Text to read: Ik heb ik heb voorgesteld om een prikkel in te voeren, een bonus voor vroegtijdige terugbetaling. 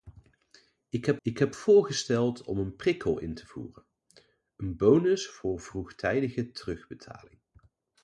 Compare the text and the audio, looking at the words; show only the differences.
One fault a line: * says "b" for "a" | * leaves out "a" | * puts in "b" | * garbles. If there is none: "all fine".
all fine